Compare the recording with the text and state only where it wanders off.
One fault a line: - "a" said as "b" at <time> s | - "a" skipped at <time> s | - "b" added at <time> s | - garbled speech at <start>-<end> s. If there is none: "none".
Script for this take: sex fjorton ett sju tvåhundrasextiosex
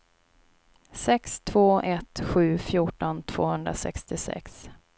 - "fjorton" said as "två" at 1.4 s
- "fjorton" added at 2.6 s